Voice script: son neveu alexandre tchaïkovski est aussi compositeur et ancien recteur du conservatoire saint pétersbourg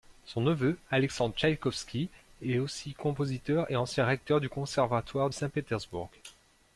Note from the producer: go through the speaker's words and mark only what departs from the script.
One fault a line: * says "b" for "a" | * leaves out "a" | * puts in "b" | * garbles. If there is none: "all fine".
all fine